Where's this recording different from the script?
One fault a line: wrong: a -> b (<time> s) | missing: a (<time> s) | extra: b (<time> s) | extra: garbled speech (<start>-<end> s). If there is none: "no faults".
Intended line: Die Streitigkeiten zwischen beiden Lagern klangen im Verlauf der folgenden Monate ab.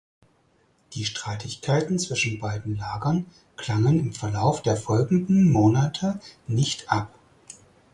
extra: nicht (6.5 s)